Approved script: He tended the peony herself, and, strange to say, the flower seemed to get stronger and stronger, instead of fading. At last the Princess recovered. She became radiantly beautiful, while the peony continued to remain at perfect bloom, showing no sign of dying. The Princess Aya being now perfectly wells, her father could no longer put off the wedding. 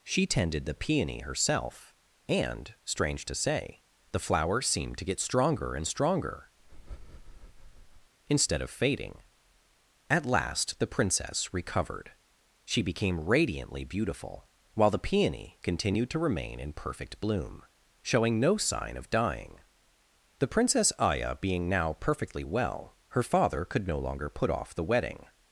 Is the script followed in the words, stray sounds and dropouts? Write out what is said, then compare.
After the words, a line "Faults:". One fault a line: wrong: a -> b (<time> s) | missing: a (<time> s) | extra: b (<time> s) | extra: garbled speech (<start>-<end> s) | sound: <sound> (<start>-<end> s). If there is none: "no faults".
She tended the peony herself, and, strange to say, the flower seemed to get stronger and stronger, instead of fading. At last the Princess recovered. She became radiantly beautiful, while the peony continued to remain in perfect bloom, showing no sign of dying. The Princess Aya being now perfectly well, her father could no longer put off the wedding.
Faults:
wrong: He -> She (0.0 s)
sound: breath (6.6-8.1 s)
wrong: at -> in (16.6 s)
wrong: wells -> well (22.4 s)